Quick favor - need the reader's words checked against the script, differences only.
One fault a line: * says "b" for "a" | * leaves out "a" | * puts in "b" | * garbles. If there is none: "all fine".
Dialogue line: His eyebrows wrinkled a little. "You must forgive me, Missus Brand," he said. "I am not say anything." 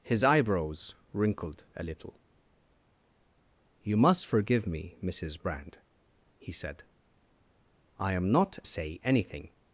all fine